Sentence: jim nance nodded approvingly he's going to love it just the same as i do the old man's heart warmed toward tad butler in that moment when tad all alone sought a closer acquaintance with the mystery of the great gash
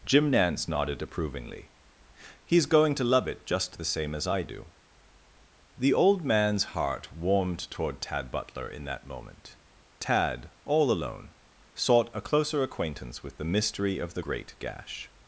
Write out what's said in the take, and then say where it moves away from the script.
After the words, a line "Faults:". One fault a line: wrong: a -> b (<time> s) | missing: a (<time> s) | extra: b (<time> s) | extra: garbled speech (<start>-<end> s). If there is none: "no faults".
jim nance nodded approvingly he's going to love it just the same as i do the old man's heart warmed toward tad butler in that moment tad all alone sought a closer acquaintance with the mystery of the great gash
Faults:
missing: when (9.6 s)